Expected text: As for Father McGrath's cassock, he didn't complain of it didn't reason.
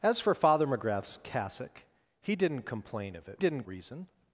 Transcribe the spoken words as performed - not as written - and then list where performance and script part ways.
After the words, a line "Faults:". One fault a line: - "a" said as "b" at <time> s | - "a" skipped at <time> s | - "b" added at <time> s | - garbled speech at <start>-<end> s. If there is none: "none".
As for Father McGrath's cassock, he didn't complain of it didn't reason.
Faults:
none